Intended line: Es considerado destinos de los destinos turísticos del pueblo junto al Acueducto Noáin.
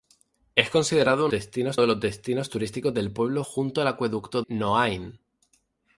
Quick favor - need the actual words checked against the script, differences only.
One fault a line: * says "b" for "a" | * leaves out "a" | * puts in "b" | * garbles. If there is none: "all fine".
all fine